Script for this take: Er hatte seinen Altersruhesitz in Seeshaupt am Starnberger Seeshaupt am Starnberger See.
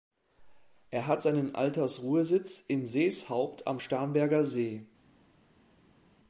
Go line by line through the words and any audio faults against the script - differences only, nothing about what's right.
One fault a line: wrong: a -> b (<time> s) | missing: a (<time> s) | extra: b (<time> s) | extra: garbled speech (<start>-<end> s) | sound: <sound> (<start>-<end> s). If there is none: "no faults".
wrong: hatte -> hat (1.1 s)
missing: Seeshaupt am Starnberger (4.4 s)